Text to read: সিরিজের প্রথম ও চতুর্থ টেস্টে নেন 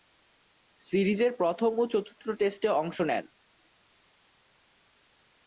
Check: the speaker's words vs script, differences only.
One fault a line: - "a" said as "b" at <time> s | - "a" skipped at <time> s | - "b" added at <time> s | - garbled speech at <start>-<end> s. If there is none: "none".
- "অংশ" added at 2.8 s